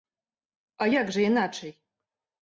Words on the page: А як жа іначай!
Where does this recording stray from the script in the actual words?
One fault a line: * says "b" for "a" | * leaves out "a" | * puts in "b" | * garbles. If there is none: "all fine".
all fine